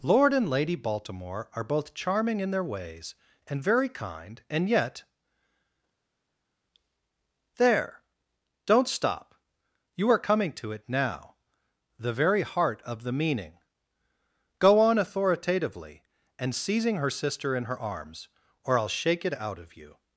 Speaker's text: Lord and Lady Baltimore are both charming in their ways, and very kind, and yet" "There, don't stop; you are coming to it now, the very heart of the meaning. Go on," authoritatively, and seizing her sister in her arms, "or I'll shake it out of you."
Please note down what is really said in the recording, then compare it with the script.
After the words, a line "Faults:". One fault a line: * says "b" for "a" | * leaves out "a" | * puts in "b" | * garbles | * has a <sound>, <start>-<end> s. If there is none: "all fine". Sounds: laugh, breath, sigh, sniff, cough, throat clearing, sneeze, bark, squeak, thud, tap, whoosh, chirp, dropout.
Lord and Lady Baltimore are both charming in their ways, and very kind, and yet" "There, don't stop; you are coming to it now, the very heart of the meaning. Go on," authoritatively, and seizing her sister in her arms, "or I'll shake it out of you."
Faults:
all fine